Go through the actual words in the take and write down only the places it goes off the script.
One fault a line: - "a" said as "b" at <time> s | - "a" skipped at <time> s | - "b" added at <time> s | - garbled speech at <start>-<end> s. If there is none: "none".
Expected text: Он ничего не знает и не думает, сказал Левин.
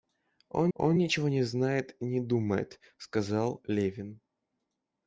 - "он" added at 0.7 s